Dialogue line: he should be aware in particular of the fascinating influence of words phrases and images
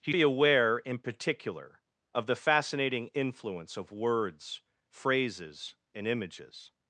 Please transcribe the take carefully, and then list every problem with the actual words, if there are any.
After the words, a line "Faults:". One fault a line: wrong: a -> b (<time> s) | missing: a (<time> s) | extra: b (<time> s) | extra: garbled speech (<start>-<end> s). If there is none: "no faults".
he be aware in particular of the fascinating influence of words phrases and images
Faults:
missing: should (0.1 s)